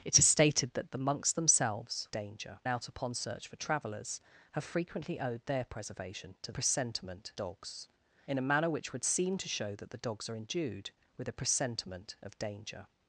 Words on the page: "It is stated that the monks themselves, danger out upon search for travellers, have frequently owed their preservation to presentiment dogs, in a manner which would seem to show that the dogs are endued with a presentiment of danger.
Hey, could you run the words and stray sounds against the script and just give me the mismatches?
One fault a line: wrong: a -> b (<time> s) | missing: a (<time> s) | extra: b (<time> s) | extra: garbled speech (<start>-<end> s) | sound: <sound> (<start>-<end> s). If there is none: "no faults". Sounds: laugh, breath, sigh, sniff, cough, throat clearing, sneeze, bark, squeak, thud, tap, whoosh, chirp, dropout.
no faults